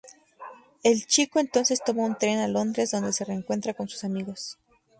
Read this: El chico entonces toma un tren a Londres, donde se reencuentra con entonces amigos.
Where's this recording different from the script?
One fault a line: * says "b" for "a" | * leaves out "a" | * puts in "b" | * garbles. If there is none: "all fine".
* says "sus" for "entonces"